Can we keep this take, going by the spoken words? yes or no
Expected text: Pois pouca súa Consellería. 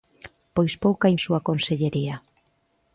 yes